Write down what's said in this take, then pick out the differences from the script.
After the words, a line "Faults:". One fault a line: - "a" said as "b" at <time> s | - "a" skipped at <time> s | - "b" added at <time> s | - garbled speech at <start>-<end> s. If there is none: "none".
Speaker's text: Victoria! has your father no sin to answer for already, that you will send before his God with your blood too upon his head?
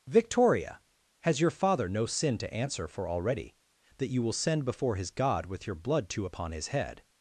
Victoria! has your father no sin to answer for already, that you will send before his God with your blood too upon his head?
Faults:
none